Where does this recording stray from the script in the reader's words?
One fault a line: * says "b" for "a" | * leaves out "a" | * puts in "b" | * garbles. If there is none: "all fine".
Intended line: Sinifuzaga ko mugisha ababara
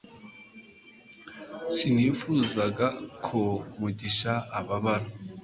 all fine